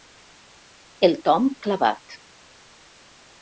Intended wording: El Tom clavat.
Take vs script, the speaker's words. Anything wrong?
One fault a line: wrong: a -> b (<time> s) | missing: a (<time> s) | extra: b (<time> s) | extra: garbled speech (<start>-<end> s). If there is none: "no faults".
no faults